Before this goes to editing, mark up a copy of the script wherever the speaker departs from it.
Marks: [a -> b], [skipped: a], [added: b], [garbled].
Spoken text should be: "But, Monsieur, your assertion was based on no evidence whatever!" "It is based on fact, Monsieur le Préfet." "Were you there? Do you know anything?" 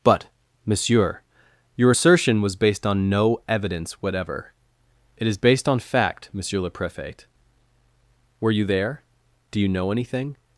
"But, Monsieur, your assertion was based on no evidence whatever!" "It is based on fact, Monsieur le Préfet." "Were you there? Do you know anything?"